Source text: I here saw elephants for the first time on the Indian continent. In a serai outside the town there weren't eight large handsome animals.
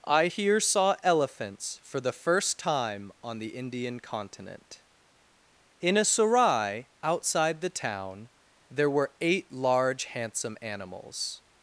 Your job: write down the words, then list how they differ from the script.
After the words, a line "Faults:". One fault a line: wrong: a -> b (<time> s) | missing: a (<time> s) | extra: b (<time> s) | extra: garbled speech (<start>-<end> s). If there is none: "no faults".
I here saw elephants for the first time on the Indian continent. In a serai outside the town there were eight large handsome animals.
Faults:
wrong: weren't -> were (8.9 s)